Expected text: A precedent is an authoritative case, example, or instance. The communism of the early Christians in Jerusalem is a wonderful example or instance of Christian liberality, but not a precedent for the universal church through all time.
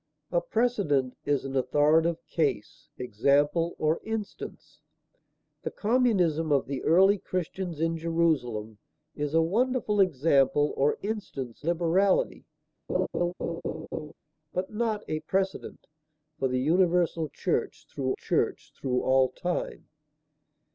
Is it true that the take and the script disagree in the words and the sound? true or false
true